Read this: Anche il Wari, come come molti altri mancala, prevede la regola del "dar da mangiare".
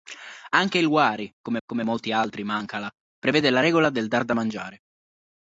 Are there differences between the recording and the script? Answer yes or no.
no